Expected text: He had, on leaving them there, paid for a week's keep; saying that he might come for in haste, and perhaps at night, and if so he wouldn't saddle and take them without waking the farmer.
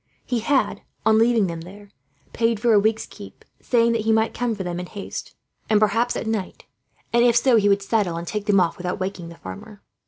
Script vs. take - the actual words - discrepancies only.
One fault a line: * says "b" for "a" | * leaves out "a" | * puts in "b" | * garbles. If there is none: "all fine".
* puts in "them"
* says "would" for "wouldn't"
* puts in "off"